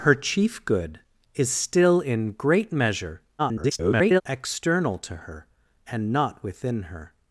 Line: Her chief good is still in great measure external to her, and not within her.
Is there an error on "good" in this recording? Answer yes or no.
no